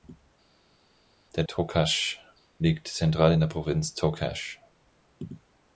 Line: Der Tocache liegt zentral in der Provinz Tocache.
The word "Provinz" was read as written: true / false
true